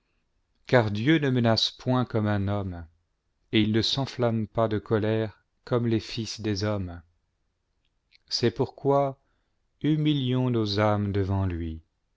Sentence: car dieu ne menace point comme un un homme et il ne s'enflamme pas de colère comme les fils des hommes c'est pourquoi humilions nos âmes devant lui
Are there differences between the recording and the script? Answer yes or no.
yes